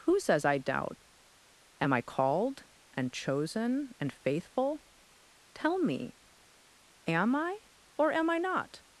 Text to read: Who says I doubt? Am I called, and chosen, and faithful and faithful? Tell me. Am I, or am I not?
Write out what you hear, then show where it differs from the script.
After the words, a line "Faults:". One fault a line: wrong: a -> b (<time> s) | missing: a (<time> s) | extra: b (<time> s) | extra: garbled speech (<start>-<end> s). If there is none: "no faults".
Who says I doubt? Am I called, and chosen, and faithful? Tell me. Am I, or am I not?
Faults:
missing: and faithful (4.8 s)